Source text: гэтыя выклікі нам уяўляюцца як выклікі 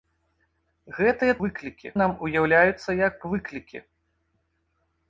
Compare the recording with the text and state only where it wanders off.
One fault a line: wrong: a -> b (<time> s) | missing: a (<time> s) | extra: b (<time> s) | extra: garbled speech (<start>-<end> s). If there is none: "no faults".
no faults